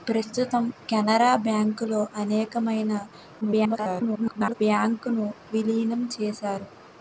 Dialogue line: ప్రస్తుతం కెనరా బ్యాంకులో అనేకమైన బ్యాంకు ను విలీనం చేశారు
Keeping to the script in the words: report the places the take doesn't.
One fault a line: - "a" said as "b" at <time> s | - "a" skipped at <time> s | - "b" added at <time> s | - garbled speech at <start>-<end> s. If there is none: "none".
- garbled speech at 3.4-4.5 s